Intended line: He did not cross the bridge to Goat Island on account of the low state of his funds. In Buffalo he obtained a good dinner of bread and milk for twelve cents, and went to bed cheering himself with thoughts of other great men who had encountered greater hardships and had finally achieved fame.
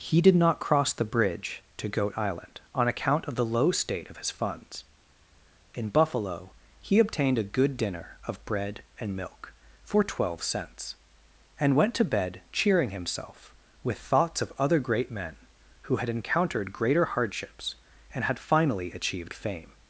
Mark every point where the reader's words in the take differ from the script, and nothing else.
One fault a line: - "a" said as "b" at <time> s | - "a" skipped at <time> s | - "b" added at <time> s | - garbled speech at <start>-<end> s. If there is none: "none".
none